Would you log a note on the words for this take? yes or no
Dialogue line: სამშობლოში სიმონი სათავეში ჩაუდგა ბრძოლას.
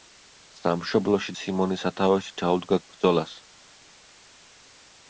no